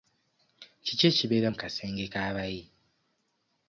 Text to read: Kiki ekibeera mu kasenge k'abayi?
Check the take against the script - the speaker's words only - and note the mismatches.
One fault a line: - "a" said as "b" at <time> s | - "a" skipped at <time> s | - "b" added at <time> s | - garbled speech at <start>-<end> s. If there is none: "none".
none